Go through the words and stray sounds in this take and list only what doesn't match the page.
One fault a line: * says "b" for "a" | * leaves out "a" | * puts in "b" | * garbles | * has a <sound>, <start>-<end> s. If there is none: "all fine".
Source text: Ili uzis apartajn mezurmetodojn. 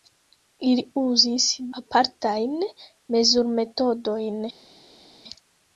all fine